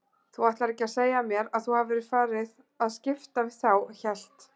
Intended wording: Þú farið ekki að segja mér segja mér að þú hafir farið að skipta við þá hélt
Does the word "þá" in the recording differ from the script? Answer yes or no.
no